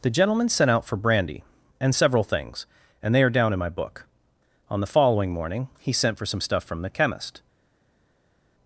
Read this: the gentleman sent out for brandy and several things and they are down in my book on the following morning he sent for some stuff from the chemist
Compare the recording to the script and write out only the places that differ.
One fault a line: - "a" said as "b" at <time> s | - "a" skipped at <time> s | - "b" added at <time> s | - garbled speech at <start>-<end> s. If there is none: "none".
none